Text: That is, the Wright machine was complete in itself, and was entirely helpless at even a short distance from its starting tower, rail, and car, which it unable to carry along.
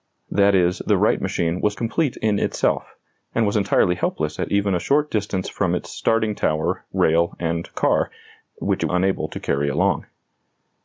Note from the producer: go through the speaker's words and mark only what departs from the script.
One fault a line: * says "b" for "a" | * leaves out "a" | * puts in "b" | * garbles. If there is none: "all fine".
all fine